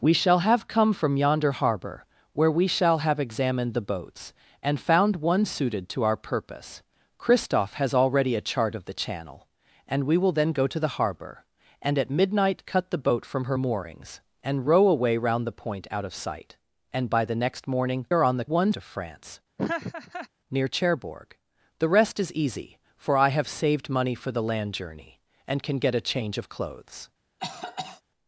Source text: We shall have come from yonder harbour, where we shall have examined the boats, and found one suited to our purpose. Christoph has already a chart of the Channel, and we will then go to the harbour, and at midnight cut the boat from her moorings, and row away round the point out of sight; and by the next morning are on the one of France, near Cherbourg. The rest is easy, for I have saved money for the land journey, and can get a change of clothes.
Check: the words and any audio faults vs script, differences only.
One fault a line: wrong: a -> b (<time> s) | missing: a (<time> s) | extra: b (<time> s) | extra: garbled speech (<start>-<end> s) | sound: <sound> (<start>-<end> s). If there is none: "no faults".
sound: laugh (19.6-20.3 s)
sound: cough (27.4-28.0 s)